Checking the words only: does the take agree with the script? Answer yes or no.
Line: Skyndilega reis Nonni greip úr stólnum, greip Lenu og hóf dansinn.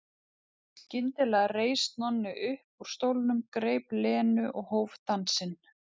no